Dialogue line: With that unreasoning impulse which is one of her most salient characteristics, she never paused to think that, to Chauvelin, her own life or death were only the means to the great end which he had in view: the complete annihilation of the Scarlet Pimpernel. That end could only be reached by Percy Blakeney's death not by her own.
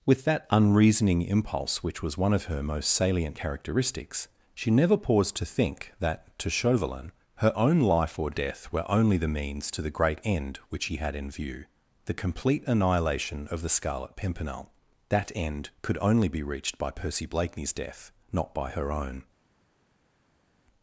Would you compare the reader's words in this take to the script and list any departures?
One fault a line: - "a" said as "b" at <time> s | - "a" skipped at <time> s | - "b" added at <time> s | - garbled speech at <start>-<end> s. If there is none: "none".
- "is" said as "was" at 2.0 s